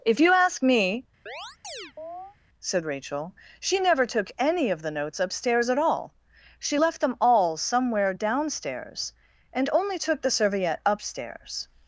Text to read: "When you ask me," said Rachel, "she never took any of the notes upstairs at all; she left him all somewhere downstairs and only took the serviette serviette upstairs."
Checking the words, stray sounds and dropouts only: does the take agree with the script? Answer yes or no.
no